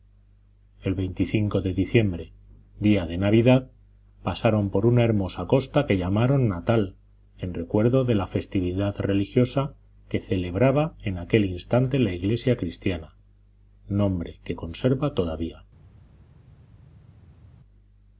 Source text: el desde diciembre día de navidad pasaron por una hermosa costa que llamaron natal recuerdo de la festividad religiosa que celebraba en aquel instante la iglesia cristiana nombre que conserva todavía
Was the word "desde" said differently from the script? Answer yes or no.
yes